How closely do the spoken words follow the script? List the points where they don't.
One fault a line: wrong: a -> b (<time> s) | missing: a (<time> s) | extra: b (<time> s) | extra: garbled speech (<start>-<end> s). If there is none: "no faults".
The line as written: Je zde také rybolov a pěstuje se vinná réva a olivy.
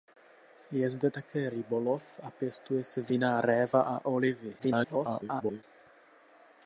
extra: garbled speech (4.6-5.6 s)